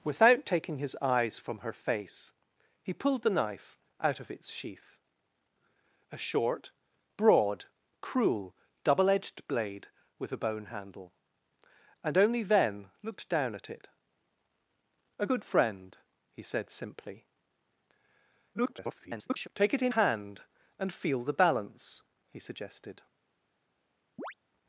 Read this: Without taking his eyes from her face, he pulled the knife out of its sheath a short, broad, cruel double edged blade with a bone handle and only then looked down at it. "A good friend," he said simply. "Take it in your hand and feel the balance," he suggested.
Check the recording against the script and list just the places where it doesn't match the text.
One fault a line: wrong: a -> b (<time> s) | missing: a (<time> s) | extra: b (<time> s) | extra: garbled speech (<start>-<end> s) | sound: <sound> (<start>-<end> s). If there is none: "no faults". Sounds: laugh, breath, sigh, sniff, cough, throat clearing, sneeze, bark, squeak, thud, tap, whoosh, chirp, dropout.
extra: garbled speech (18.5-19.5 s)
missing: your (19.9 s)
sound: chirp (24.2-24.3 s)